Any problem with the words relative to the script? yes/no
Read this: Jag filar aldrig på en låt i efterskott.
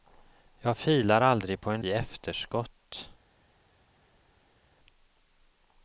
yes